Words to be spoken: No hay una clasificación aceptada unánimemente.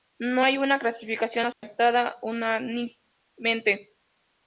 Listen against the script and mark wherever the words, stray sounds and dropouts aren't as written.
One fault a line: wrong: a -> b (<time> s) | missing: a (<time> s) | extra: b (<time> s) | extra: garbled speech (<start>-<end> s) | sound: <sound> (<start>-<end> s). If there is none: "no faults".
sound: dropout (1.5-1.6 s)